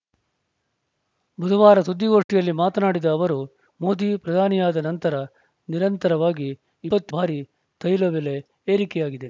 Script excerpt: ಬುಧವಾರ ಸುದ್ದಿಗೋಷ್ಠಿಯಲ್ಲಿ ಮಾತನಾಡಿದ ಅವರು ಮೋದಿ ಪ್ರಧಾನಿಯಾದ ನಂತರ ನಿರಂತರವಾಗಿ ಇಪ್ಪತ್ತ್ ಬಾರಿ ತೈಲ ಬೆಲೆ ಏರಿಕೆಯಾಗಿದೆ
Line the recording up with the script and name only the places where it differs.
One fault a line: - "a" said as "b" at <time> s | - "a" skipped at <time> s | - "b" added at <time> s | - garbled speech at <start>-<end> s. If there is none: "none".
none